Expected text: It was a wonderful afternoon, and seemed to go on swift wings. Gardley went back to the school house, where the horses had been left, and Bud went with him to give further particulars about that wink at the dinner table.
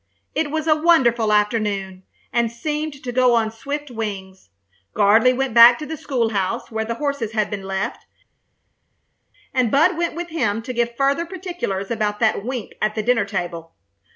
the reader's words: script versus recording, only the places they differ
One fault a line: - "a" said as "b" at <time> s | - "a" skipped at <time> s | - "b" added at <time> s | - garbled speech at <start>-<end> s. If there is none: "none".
none